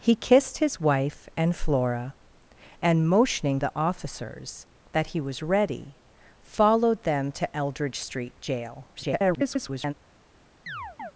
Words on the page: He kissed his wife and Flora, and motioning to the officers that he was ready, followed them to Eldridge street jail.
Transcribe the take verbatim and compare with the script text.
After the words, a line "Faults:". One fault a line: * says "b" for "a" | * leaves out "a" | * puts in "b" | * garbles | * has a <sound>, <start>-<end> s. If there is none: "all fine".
He kissed his wife and Flora, and motioning the officers that he was ready, followed them to Eldridge street jail. [garbled]
Faults:
* leaves out "to"
* garbles
* has a chirp, 10.7-11.1 s